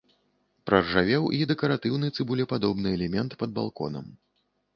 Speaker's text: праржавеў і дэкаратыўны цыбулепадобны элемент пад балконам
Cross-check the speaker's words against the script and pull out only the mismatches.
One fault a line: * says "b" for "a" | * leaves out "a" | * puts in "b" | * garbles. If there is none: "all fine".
all fine